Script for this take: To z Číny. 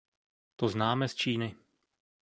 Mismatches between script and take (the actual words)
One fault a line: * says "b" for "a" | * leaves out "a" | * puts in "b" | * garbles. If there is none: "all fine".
* puts in "známe"